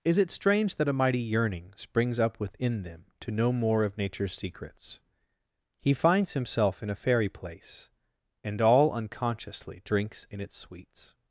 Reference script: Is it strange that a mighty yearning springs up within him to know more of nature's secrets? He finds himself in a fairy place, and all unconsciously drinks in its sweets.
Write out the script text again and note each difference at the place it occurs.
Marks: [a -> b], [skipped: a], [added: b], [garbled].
Is it strange that a mighty yearning springs up within [him -> them] to know more of nature's secrets? He finds himself in a fairy place, and all unconsciously drinks in its sweets.